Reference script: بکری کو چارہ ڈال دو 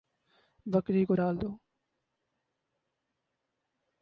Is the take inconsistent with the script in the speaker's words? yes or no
yes